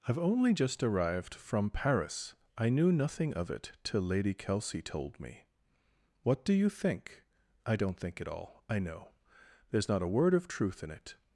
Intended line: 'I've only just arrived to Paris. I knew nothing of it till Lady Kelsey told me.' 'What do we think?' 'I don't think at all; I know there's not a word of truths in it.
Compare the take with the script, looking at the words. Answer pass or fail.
fail